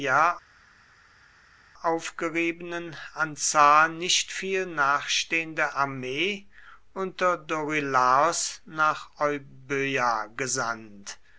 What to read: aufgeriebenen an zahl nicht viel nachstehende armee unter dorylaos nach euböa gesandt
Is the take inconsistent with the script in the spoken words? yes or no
no